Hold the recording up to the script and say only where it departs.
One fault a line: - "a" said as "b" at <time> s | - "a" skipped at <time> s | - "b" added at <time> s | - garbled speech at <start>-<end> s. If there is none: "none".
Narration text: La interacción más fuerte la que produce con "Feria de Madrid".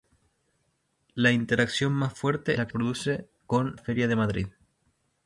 none